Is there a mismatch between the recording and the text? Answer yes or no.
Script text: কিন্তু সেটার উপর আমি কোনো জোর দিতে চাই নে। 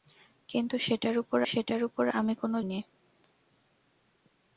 yes